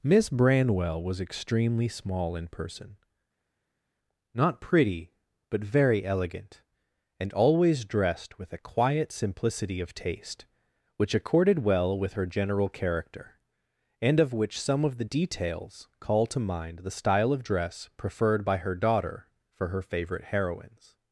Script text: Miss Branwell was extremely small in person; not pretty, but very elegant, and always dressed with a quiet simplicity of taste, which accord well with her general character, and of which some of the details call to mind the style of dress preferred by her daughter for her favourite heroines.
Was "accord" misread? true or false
true